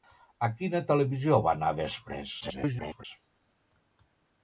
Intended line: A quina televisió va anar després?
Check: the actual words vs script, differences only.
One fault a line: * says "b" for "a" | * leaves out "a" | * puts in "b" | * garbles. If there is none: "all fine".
* garbles